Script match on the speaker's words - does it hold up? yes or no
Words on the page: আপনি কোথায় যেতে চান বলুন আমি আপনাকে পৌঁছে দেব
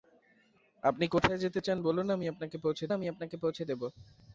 no